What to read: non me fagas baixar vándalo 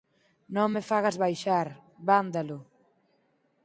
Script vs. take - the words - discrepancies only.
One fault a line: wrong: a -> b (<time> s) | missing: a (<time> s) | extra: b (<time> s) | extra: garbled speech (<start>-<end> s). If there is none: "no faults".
no faults